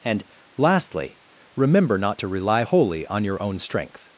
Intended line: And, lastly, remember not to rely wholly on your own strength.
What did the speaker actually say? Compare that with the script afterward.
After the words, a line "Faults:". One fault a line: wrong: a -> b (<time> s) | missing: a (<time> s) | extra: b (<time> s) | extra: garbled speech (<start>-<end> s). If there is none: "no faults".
And, lastly, remember not to rely wholly on your own strength.
Faults:
no faults